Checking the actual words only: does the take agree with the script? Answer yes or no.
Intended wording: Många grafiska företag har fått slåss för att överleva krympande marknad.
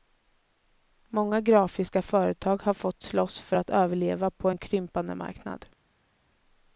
no